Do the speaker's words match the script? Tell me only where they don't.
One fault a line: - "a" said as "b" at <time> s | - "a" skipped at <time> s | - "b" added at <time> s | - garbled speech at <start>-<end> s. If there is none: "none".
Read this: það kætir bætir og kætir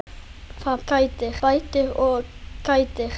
none